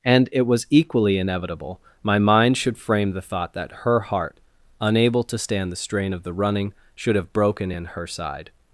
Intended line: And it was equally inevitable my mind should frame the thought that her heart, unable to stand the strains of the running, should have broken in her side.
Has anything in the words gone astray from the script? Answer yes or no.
yes